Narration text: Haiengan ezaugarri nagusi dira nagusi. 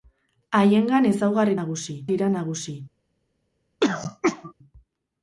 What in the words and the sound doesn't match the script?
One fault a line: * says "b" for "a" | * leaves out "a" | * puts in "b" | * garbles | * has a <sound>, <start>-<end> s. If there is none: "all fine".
* has a throat clearing, 3.8-4.5 s